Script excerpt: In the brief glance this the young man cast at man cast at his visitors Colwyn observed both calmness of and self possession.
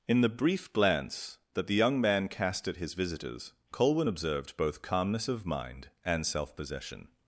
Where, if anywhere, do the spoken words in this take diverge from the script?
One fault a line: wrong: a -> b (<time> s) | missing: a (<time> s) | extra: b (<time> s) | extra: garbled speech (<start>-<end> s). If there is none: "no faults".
wrong: this -> that (1.5 s)
missing: man cast at (2.8 s)
extra: mind (5.4 s)